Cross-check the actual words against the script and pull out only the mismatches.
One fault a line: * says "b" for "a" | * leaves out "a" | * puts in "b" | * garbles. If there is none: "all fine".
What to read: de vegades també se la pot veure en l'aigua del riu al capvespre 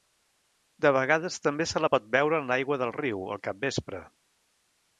all fine